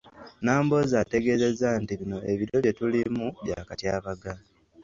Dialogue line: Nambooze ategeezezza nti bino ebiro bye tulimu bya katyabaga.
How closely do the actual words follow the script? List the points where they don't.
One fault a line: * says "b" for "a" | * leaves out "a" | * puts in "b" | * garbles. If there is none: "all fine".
all fine